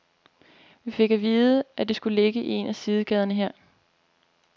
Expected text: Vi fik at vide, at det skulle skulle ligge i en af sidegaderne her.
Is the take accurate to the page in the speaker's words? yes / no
no